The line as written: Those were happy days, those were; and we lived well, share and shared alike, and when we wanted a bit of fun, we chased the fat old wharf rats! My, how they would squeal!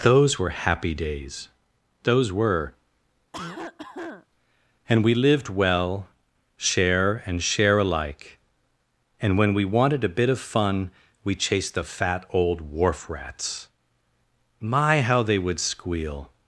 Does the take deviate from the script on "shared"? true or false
true